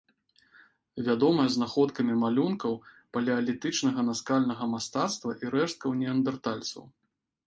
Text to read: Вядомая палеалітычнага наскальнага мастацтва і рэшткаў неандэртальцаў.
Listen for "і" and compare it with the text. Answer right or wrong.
right